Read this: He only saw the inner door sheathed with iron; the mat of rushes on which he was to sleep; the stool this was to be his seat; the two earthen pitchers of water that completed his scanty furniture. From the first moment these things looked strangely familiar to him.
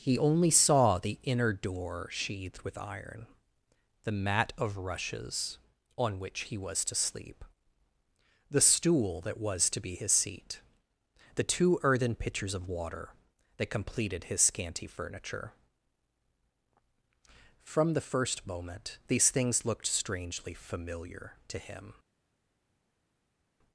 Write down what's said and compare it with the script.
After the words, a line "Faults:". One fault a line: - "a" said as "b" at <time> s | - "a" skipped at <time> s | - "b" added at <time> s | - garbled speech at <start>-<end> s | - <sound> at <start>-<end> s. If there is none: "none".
He only saw the inner door sheathed with iron; the mat of rushes on which he was to sleep; the stool that was to be his seat; the two earthen pitchers of water that completed his scanty furniture. From the first moment these things looked strangely familiar to him.
Faults:
- "this" said as "that" at 9.2 s